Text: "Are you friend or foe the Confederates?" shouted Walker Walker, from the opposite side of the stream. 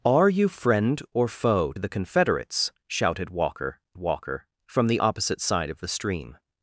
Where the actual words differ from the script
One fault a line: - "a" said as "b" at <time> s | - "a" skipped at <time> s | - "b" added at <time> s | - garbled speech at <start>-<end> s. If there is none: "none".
none